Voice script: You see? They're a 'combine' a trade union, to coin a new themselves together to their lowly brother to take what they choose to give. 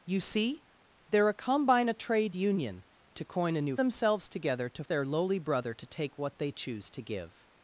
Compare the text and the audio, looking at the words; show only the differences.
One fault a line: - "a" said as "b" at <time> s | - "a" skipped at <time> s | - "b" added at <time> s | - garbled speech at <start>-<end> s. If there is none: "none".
none